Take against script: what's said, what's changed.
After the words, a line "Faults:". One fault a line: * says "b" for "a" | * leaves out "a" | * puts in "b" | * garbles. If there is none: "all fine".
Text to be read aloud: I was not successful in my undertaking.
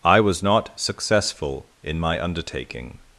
I was not successful in my undertaking.
Faults:
all fine